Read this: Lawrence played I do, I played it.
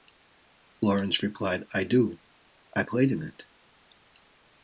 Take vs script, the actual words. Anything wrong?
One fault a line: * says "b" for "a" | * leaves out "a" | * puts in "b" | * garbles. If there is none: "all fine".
* says "replied" for "played"
* puts in "in"